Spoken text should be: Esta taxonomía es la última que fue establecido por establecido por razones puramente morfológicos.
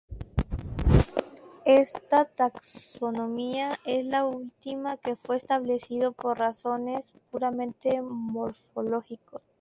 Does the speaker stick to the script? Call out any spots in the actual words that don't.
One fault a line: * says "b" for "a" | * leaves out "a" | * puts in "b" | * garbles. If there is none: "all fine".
* leaves out "establecido por"